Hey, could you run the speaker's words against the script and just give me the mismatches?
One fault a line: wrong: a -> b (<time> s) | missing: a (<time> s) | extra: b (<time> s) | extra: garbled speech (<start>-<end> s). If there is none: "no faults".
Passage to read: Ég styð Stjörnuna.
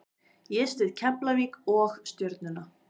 extra: Keflavík og (1.0 s)